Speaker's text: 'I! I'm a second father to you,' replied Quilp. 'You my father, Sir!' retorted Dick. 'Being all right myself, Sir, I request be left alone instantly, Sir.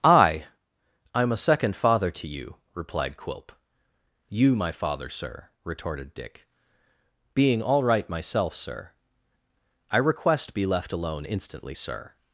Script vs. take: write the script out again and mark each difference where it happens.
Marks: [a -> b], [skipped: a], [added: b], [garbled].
'I! I'm a second father to you,' replied Quilp. 'You my father, Sir!' retorted Dick. 'Being all right myself, Sir, I request be left alone instantly, Sir.